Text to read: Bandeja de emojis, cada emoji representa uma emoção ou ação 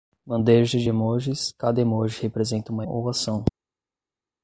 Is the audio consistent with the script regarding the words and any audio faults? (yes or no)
no